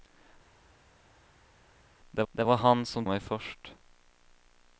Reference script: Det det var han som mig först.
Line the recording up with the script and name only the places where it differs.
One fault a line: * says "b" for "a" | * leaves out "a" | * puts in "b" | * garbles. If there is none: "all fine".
all fine